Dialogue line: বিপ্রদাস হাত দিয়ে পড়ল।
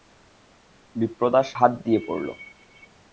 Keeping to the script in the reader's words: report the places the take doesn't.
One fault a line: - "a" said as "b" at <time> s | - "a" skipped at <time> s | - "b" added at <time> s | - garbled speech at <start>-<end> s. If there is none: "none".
none